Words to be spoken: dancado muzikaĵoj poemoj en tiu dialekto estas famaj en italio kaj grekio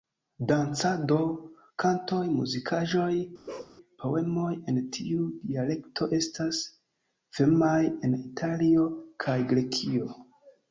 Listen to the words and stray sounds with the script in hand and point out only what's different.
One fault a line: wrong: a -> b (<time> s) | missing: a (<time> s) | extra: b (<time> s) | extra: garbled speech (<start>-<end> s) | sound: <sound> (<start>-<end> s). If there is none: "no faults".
extra: kantoj (1.8 s)
sound: bark (3.5-3.8 s)